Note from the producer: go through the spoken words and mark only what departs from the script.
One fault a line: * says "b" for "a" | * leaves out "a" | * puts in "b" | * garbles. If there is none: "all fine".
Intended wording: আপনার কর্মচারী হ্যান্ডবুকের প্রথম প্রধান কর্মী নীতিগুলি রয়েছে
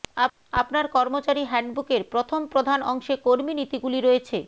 * puts in "অংশে"